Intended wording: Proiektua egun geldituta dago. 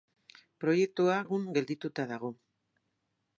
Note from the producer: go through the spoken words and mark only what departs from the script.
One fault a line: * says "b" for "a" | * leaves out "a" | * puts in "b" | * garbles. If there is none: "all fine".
all fine